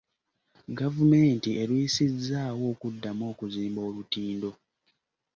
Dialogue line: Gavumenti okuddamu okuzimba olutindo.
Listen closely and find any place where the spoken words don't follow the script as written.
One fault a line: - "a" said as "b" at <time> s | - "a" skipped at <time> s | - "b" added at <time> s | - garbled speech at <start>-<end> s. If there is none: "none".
- "erwisizzaawo" added at 1.6 s